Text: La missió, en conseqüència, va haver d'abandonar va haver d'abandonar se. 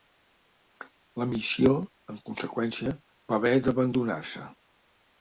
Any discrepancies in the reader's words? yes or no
yes